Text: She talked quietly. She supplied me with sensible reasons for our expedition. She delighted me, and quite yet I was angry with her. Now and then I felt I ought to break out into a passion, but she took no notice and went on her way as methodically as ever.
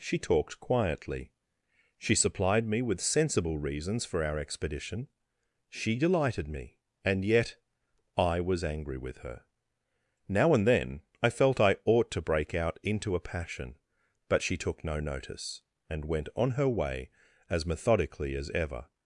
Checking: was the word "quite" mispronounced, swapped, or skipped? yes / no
yes